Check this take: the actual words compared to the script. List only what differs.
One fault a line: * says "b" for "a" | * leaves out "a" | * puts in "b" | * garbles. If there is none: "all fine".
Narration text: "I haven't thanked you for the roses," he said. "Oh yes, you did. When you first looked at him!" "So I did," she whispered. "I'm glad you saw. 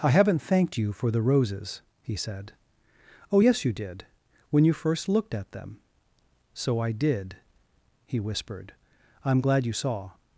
* says "them" for "him"
* says "he" for "she"